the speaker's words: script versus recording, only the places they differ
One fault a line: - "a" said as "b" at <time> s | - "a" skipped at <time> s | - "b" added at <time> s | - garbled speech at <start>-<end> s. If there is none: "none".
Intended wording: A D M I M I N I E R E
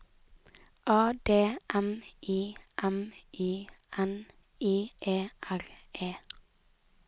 none